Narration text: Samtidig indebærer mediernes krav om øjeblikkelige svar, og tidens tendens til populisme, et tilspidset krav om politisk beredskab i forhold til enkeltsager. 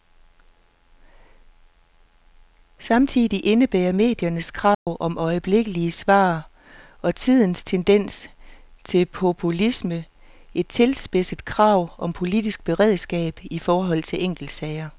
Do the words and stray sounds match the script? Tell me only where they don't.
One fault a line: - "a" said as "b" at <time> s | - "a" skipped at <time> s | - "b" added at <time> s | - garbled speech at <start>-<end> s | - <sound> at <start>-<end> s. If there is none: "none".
- dropout at 4.7-4.9 s